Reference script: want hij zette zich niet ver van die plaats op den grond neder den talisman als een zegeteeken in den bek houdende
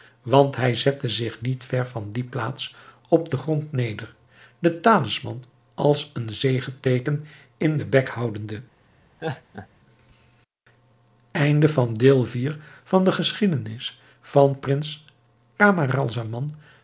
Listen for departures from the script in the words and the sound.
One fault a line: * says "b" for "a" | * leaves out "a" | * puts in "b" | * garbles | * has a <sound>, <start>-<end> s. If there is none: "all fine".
* has a laugh, 9.2-9.7 s